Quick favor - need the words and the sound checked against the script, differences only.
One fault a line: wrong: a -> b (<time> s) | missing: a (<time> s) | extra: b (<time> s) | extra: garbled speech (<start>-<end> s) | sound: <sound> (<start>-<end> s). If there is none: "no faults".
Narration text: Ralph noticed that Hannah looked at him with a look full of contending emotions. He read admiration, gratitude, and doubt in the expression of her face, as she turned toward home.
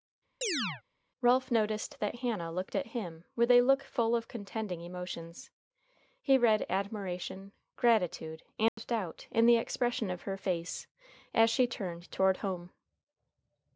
sound: chirp (0.4-0.8 s)
sound: dropout (8.7-8.8 s)